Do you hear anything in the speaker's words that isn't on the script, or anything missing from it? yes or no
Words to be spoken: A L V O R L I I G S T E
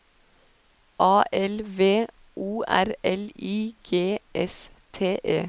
yes